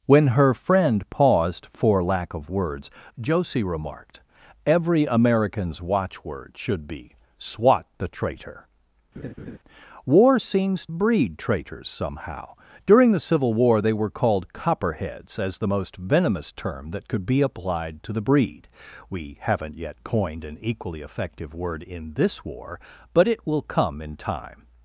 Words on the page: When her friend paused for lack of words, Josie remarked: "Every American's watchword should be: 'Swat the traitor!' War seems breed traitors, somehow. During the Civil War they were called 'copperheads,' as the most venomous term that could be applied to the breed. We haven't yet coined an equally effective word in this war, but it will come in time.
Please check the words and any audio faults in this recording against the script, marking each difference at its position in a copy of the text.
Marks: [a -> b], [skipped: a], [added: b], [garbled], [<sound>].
When her friend paused for lack of words, Josie remarked: "Every American's watchword should be: 'Swat the traitor!' [laugh] War seems breed traitors, somehow. During the Civil War they were called 'copperheads,' as the most venomous term that could be applied to the breed. We haven't yet coined an equally effective word in this war, but it will come in time.